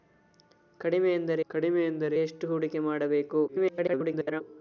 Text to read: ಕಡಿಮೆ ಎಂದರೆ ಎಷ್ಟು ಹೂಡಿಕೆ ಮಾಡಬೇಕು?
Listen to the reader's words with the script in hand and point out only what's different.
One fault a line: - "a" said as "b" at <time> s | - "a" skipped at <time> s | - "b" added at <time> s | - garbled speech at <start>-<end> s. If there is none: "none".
- "ಕಡಿಮೆ ಎಂದರೆ" added at 1.5 s
- garbled speech at 3.5-4.4 s